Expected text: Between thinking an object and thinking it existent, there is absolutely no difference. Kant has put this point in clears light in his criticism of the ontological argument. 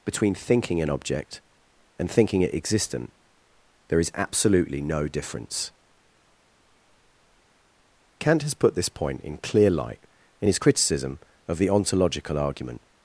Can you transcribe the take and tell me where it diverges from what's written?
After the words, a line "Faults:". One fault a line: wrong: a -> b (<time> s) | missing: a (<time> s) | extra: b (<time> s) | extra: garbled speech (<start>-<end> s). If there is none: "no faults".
Between thinking an object and thinking it existent, there is absolutely no difference. Kant has put this point in clear light in his criticism of the ontological argument.
Faults:
wrong: clears -> clear (9.4 s)